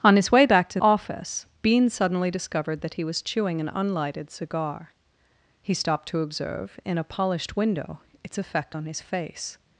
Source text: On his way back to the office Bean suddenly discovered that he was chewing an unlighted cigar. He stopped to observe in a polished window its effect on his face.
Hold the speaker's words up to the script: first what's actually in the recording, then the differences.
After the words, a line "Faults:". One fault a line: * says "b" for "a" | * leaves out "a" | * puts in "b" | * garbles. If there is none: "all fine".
On his way back to office Bean suddenly discovered that he was chewing an unlighted cigar. He stopped to observe in a polished window its effect on his face.
Faults:
* leaves out "the"